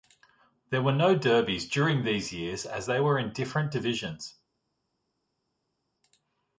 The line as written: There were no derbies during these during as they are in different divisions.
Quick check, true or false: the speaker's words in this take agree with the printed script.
false